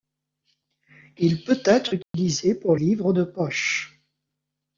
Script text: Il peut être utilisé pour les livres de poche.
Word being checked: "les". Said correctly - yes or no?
no